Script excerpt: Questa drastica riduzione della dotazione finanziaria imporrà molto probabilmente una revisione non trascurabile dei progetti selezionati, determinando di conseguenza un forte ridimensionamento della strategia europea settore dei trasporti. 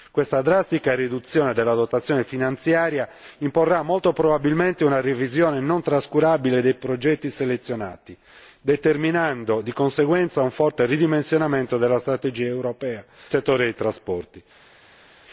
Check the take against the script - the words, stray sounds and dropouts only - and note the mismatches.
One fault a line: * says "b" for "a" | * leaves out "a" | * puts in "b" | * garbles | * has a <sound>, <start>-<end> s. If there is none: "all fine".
all fine